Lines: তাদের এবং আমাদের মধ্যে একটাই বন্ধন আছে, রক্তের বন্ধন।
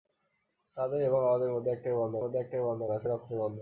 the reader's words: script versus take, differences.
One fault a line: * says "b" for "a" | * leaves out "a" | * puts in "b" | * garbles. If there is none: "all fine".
* puts in "মধ্যে একটাই বন্ধন"